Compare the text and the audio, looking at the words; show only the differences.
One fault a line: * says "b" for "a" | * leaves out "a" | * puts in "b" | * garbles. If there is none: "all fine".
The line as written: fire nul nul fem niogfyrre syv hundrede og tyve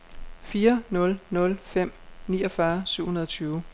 all fine